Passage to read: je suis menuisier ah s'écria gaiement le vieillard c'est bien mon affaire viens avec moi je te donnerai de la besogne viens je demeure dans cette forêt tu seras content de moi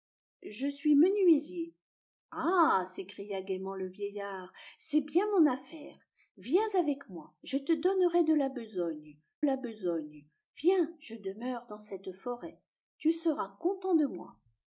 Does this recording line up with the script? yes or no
no